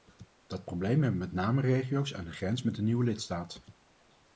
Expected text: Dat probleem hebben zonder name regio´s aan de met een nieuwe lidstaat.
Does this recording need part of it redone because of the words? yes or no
yes